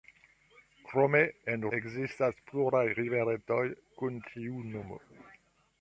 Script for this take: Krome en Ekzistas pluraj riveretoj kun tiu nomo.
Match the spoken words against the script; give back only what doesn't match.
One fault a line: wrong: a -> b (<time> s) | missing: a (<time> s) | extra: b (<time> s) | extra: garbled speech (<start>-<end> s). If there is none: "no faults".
no faults